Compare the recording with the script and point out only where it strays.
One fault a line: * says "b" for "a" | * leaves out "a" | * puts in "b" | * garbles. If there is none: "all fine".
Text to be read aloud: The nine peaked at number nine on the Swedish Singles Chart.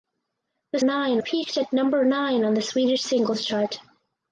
all fine